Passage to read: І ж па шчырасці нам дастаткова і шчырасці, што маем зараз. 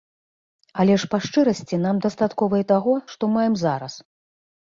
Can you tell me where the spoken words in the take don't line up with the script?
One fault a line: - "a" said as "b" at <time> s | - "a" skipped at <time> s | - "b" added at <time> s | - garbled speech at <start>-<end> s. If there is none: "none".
- "І" said as "Але" at 0.8 s
- "шчырасці" said as "таго" at 2.7 s